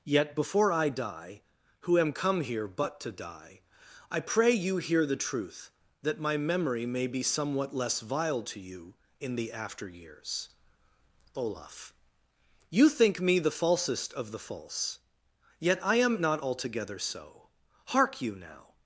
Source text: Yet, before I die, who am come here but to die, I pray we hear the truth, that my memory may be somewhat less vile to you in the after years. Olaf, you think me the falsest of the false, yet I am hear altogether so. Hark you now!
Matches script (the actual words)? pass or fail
fail